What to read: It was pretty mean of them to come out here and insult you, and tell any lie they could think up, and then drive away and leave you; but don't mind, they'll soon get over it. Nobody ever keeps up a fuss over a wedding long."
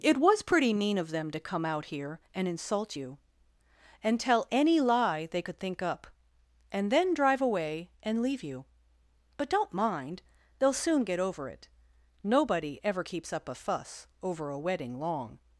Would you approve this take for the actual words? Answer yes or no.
yes